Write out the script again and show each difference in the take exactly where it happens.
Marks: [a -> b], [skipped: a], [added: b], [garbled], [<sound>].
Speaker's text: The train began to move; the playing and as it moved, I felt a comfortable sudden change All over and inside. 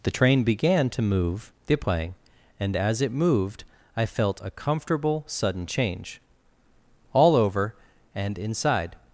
The train began to move; the playing and as it moved, I felt a comfortable sudden change All over and inside.